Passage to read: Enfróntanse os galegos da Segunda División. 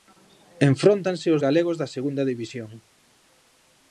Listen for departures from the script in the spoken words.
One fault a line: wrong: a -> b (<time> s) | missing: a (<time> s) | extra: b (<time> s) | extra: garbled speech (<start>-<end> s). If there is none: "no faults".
no faults